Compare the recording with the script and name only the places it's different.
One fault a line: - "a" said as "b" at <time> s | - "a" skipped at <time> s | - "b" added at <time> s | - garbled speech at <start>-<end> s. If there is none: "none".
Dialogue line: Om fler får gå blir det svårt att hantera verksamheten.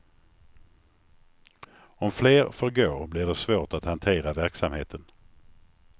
none